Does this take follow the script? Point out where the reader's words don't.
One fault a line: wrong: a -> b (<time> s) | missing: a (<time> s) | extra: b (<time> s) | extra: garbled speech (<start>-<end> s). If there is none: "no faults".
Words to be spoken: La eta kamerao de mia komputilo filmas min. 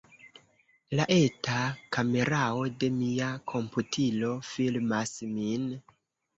no faults